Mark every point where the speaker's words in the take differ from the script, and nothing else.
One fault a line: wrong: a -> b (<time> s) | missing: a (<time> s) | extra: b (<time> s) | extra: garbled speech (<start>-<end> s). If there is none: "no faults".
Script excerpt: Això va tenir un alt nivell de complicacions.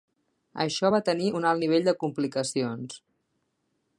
no faults